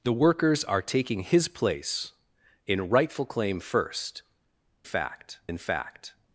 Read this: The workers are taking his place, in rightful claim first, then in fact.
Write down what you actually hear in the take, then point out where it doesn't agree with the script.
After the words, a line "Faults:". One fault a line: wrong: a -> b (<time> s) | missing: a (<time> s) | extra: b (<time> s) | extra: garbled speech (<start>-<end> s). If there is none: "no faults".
The workers are taking his place, in rightful claim first, fact in fact.
Faults:
wrong: then -> fact (4.8 s)